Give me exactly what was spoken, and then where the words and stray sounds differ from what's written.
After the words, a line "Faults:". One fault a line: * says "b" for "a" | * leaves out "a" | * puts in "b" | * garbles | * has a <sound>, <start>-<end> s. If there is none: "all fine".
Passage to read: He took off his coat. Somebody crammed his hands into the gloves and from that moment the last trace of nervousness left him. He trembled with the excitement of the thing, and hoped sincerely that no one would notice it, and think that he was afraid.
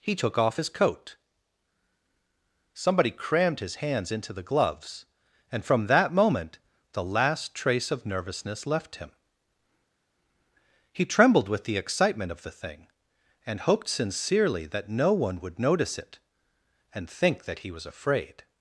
He took off his coat. Somebody crammed his hands into the gloves and from that moment the last trace of nervousness left him. He trembled with the excitement of the thing, and hoped sincerely that no one would notice it, and think that he was afraid.
Faults:
all fine